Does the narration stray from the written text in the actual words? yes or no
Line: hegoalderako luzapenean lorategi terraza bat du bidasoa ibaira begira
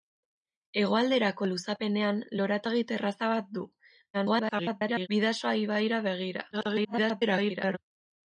yes